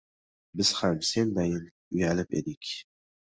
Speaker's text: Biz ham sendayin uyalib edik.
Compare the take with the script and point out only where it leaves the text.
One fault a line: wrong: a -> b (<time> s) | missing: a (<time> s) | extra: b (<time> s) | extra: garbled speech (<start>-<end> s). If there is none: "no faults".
no faults